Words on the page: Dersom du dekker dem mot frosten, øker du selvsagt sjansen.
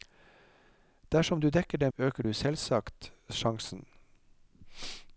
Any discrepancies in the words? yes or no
yes